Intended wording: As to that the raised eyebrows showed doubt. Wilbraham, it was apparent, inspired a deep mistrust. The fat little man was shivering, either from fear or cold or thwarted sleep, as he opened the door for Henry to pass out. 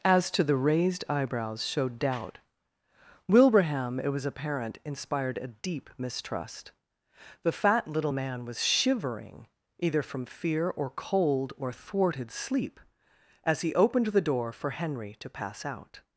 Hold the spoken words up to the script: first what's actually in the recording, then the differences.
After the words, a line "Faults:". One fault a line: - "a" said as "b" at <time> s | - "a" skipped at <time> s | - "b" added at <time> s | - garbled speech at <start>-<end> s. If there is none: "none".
As to the raised eyebrows showed doubt. Wilbraham, it was apparent, inspired a deep mistrust. The fat little man was shivering, either from fear or cold or thwarted sleep, as he opened the door for Henry to pass out.
Faults:
- "that" skipped at 0.4 s